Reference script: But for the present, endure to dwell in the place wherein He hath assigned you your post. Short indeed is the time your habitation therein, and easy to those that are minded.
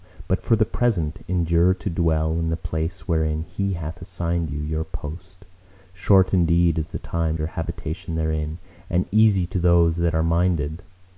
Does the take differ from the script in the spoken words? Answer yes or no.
no